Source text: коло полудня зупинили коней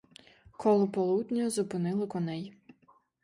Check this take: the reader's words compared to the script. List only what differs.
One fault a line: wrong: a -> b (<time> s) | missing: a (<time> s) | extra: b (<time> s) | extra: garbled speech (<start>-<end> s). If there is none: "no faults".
no faults